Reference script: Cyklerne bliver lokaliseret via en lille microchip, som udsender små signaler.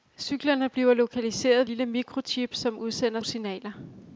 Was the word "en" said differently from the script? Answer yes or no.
yes